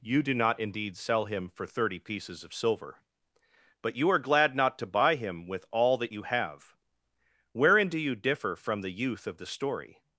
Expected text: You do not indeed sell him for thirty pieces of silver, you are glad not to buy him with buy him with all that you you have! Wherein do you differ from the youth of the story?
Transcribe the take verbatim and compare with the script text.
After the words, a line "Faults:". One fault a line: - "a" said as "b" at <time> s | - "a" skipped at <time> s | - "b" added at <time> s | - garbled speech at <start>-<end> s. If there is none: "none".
You do not indeed sell him for thirty pieces of silver, but you are glad not to buy him with all that you have! Wherein do you differ from the youth of the story?
Faults:
- "but" added at 3.8 s
- "buy him with" skipped at 5.7 s
- "you" skipped at 6.2 s